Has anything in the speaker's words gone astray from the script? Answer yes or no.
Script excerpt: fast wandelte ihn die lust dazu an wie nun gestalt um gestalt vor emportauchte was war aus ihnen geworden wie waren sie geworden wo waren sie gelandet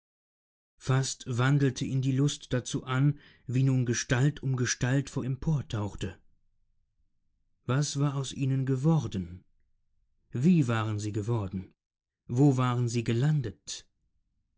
no